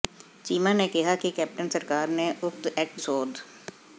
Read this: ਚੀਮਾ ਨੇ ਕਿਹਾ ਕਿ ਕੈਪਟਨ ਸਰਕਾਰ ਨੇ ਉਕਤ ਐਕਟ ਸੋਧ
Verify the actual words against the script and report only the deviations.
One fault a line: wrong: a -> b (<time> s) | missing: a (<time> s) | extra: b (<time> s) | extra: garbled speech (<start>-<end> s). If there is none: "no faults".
no faults